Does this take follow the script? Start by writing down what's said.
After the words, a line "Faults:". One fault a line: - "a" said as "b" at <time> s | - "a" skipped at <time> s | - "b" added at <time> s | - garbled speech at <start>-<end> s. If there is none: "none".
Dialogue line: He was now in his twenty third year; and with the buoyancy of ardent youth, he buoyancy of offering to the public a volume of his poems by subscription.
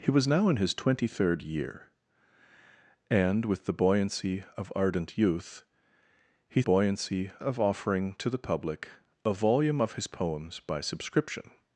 He was now in his twenty third year; and with the buoyancy of ardent youth, he buoyancy of offering to the public a volume of his poems by subscription.
Faults:
none